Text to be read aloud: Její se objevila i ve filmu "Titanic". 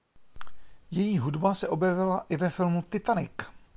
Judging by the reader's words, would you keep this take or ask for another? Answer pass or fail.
fail